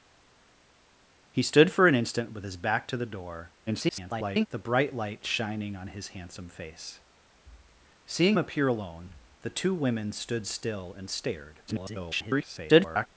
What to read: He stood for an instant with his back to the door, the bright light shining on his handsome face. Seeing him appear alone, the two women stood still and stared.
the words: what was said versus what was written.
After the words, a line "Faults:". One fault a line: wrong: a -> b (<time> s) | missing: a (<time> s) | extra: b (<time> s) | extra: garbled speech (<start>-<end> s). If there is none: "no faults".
He stood for an instant with his back to the door, [garbled] the bright light shining on his handsome face. Seeing appear alone, the two women stood still and stared. [garbled]
Faults:
extra: garbled speech (3.7-4.5 s)
missing: him (8.4 s)
extra: garbled speech (11.7-13.1 s)